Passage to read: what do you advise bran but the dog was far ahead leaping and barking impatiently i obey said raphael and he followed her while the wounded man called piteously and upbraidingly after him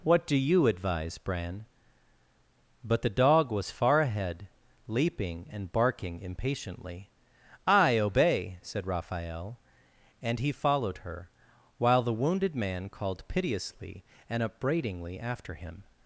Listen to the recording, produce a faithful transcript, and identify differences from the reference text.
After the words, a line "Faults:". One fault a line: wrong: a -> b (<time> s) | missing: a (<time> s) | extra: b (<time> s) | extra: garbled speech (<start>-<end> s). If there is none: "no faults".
what do you advise bran but the dog was far ahead leaping and barking impatiently i obey said raphael and he followed her while the wounded man called piteously and upbraidingly after him
Faults:
no faults